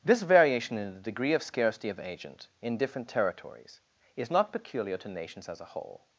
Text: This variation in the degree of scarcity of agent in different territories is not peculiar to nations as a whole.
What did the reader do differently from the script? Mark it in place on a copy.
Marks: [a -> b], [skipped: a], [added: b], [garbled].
This variation in the degree of scarcity of agent in different territories is not peculiar to nations as a whole.